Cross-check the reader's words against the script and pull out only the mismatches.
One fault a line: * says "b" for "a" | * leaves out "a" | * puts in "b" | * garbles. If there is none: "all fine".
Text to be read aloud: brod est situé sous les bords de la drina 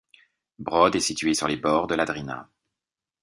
* says "sur" for "sous"